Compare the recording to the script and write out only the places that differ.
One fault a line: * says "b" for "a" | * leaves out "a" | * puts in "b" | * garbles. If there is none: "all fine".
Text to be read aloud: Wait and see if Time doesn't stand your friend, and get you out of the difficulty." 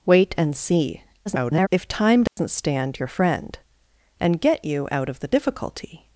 * garbles